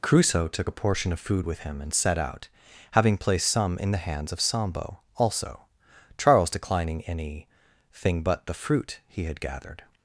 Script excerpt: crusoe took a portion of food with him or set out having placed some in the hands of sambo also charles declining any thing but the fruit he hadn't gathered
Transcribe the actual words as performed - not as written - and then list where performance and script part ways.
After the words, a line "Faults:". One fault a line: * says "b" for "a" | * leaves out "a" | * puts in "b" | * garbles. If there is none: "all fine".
crusoe took a portion of food with him and set out having placed some in the hands of sambo also charles declining any thing but the fruit he had gathered
Faults:
* says "and" for "or"
* says "had" for "hadn't"